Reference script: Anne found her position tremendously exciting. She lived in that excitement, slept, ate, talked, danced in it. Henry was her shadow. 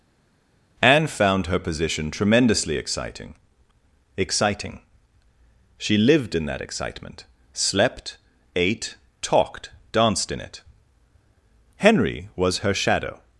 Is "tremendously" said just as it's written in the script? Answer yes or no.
yes